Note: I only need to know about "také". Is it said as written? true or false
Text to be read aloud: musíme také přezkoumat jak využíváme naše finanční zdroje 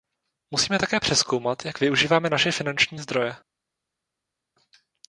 true